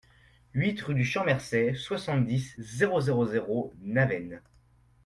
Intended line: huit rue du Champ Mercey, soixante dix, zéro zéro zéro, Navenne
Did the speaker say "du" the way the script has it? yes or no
yes